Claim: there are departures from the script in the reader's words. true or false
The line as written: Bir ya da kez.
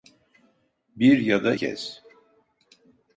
false